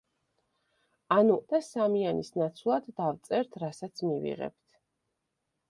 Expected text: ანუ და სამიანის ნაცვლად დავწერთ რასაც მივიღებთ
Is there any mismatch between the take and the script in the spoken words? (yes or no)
no